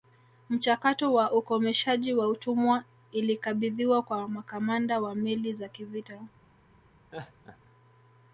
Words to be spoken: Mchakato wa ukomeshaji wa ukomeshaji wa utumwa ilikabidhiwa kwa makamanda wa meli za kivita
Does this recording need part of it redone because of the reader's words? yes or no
yes